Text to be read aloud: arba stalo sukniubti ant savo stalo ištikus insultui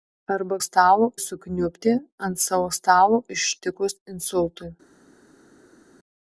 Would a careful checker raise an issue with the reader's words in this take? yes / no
no